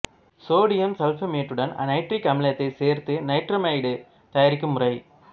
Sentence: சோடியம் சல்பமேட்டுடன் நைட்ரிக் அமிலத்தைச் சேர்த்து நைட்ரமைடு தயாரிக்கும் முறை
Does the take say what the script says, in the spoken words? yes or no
yes